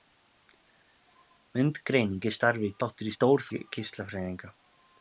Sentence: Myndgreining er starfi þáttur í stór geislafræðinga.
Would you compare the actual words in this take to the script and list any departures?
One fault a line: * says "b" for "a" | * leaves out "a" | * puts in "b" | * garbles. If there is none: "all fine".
all fine